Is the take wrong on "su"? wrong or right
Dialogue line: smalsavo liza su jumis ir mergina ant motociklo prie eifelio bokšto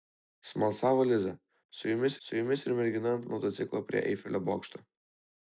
right